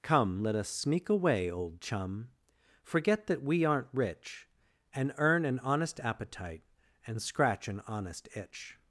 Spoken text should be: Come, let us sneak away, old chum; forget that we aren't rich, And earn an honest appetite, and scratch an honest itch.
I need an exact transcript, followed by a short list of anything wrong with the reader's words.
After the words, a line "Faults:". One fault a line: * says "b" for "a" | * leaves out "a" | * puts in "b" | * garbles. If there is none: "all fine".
Come, let us sneak away, old chum; forget that we aren't rich, And earn an honest appetite, and scratch an honest itch.
Faults:
all fine